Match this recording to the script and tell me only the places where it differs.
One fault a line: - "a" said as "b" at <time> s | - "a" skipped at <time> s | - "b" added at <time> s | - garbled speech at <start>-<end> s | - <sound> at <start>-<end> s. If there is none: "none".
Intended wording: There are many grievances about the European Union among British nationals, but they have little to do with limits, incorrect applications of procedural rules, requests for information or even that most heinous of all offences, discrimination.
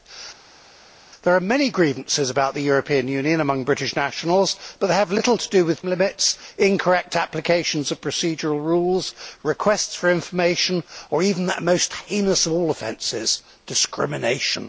none